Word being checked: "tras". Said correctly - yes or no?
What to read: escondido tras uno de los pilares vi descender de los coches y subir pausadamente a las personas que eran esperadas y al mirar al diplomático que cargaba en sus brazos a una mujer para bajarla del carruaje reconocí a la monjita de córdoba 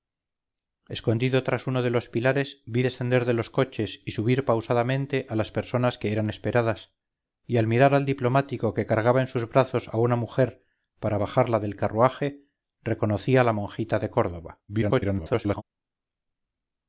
yes